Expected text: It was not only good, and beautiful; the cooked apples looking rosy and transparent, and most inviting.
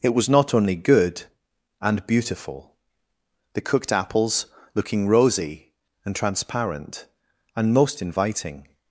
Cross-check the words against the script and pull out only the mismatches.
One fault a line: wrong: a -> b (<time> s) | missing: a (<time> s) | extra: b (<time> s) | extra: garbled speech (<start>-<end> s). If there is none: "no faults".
no faults